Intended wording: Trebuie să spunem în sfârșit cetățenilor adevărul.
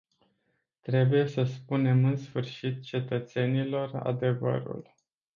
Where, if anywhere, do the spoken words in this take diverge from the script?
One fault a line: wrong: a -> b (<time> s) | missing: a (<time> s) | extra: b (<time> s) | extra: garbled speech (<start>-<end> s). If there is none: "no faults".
no faults